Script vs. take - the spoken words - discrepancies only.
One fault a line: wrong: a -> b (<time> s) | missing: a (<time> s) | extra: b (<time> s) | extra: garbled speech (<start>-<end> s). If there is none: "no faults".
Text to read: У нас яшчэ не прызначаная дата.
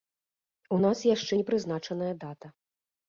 no faults